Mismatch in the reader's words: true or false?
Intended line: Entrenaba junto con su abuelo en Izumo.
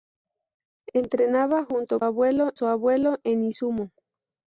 true